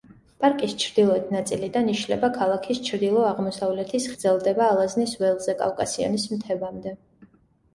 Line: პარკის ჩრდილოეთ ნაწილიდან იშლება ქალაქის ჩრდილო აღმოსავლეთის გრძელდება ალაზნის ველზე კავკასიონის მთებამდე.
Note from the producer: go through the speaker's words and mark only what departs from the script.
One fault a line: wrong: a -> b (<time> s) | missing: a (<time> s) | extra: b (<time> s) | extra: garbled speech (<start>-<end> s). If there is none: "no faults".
no faults